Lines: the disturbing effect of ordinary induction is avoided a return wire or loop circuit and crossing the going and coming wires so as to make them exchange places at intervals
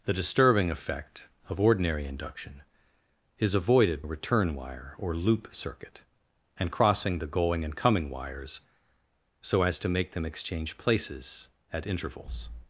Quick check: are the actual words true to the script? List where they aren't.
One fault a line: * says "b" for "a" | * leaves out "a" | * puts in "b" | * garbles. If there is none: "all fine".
all fine